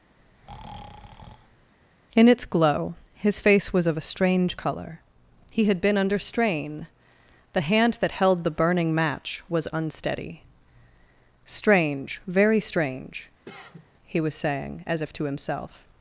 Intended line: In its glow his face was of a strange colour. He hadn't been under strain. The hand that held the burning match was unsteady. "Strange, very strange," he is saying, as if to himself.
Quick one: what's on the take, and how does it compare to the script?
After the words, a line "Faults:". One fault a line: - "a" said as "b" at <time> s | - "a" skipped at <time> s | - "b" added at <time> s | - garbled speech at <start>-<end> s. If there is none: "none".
In its glow his face was of a strange colour. He had been under strain. The hand that held the burning match was unsteady. "Strange, very strange," he was saying, as if to himself.
Faults:
- "hadn't" said as "had" at 5.6 s
- "is" said as "was" at 14.2 s